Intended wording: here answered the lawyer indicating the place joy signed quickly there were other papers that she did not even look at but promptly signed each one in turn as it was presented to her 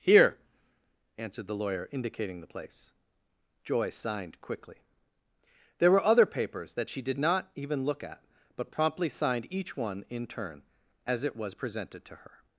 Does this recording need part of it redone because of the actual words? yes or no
no